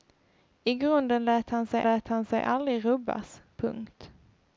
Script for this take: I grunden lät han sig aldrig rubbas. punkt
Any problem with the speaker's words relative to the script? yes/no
yes